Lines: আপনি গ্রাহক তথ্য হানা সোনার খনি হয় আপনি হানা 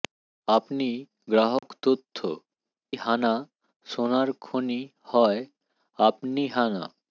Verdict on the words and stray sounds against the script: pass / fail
fail